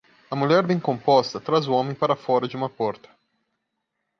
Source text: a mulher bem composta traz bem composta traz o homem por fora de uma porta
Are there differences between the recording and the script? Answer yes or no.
yes